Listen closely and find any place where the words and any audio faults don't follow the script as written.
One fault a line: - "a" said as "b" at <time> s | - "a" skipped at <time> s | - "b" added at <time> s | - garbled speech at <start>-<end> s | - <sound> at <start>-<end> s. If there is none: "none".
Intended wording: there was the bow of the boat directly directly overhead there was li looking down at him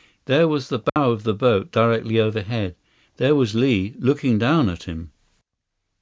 - dropout at 0.9-1.0 s
- "directly" skipped at 2.2 s